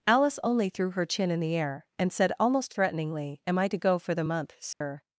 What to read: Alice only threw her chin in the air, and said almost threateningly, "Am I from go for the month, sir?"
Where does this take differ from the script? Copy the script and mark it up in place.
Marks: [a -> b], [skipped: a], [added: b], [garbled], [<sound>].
Alice only threw her chin in the air, and said almost threateningly, "Am I [from -> to] go for the month, sir?" [dropout]